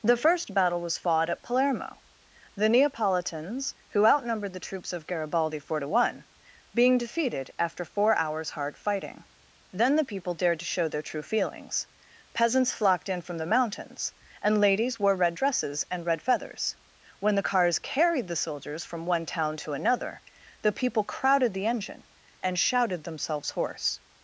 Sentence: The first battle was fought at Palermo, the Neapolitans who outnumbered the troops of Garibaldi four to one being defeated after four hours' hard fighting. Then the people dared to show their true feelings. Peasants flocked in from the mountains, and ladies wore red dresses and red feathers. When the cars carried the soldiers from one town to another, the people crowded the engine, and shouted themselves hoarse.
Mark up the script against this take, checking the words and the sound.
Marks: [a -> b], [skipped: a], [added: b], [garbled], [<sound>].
The first battle was fought at Palermo, the Neapolitans who outnumbered the troops of Garibaldi four to one being defeated after four hours' hard fighting. Then the people dared to show their true feelings. Peasants flocked in from the mountains, and ladies wore red dresses and red feathers. When the cars carried the soldiers from one town to another, the people crowded the engine, and shouted themselves hoarse.